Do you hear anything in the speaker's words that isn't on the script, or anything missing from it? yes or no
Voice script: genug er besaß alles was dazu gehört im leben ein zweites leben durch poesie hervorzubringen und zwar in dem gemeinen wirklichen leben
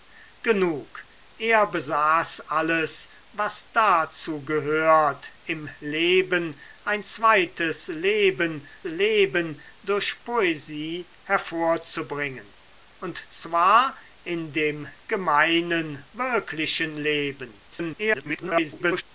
yes